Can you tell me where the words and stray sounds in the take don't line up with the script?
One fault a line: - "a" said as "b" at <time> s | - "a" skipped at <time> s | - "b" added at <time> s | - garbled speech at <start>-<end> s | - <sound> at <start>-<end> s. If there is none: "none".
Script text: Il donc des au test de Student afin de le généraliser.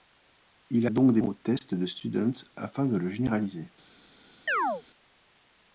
- chirp at 4.5-4.8 s